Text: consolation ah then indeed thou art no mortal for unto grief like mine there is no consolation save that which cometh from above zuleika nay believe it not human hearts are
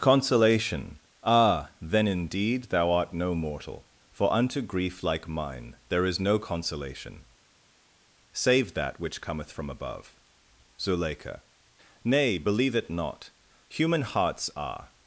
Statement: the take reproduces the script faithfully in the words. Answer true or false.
true